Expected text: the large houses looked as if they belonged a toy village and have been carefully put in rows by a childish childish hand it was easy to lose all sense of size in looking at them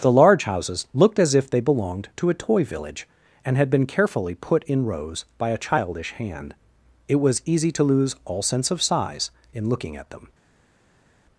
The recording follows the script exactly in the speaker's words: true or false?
false